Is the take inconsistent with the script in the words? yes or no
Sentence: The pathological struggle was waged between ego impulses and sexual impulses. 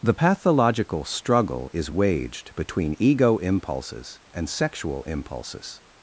yes